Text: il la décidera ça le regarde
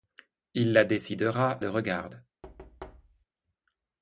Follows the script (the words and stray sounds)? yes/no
no